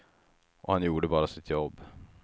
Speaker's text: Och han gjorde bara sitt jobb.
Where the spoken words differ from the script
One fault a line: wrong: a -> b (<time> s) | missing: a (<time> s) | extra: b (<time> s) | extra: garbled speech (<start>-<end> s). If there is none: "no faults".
no faults